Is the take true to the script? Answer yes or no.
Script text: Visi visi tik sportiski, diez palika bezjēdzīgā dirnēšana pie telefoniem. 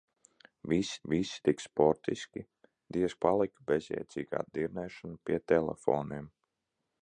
yes